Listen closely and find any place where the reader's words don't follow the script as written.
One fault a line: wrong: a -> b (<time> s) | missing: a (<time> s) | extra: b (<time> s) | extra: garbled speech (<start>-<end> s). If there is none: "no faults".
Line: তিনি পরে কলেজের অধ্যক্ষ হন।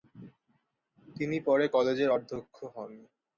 no faults